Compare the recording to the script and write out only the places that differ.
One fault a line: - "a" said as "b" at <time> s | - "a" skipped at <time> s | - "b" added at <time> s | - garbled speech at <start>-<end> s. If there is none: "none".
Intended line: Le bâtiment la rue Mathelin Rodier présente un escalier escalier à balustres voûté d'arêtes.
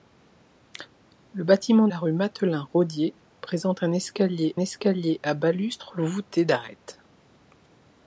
none